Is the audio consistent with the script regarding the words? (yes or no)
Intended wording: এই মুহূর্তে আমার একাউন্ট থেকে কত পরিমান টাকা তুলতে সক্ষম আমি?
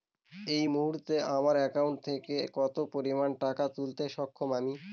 yes